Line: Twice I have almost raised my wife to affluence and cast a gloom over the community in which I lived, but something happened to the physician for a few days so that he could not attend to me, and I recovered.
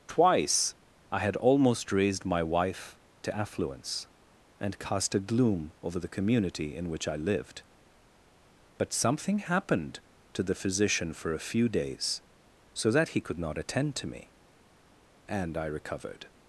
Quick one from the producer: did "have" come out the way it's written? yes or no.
no